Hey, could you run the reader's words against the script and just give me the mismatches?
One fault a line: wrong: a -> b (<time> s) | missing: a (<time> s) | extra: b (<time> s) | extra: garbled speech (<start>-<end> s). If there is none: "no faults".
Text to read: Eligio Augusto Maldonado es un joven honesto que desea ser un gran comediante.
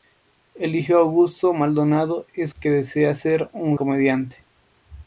missing: un joven honesto (2.5 s)
missing: gran (3.8 s)